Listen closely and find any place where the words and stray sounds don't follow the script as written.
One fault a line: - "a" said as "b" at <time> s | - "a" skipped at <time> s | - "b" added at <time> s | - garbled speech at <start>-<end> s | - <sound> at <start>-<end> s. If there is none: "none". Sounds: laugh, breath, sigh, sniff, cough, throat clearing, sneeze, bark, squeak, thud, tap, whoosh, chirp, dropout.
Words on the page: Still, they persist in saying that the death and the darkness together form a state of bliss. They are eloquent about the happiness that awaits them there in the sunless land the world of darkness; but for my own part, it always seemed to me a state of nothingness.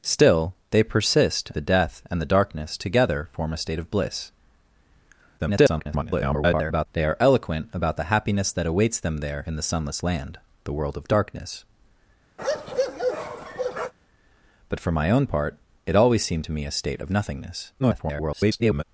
- "in saying that" skipped at 1.5 s
- garbled speech at 5.4-6.9 s
- bark at 12.4-13.9 s
- garbled speech at 17.8-18.8 s